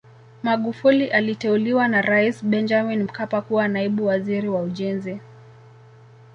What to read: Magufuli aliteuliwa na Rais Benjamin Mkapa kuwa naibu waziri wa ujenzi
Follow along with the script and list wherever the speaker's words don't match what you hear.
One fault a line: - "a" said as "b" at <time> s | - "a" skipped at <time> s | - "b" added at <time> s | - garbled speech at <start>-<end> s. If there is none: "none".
none